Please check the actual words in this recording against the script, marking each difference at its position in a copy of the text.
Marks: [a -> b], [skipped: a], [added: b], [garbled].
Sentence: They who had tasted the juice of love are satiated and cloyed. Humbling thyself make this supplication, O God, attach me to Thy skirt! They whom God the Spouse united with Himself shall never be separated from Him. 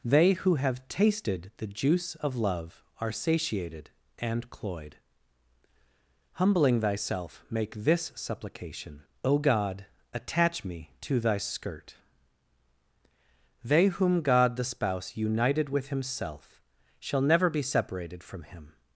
They who [had -> have] tasted the juice of love are satiated and cloyed. Humbling thyself make this supplication, O God, attach me to Thy skirt! They whom God the Spouse united with Himself shall never be separated from Him.